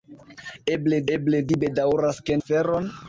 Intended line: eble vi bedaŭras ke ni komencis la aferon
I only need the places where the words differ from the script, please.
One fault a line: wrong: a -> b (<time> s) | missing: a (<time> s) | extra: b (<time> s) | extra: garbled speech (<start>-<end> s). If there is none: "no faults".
extra: eble (1.2 s)
missing: ni komencis la (2.4 s)